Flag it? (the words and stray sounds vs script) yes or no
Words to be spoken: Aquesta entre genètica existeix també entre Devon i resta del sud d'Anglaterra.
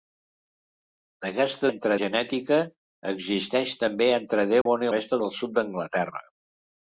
yes